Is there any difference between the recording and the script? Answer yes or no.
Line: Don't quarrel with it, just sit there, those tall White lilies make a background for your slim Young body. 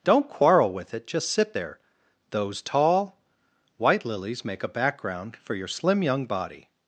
no